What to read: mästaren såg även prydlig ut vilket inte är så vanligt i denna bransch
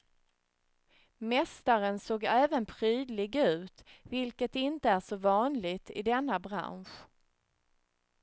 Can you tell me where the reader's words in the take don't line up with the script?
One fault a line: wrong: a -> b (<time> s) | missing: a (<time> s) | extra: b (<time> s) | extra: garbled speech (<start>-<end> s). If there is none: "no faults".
no faults